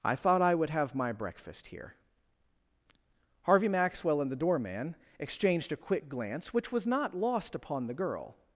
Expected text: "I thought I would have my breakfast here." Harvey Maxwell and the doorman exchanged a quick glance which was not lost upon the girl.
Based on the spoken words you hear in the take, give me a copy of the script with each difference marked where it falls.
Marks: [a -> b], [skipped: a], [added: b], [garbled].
"I thought I would have my breakfast here." Harvey Maxwell and the doorman exchanged a quick glance which was not lost upon the girl.